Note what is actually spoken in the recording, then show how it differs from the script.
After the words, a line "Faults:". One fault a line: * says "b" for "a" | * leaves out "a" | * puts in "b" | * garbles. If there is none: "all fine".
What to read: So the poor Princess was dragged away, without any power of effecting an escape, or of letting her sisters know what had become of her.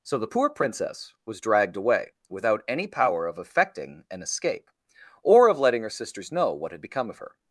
So the poor Princess was dragged away, without any power of effecting an escape, or of letting her sisters know what had become of her.
Faults:
all fine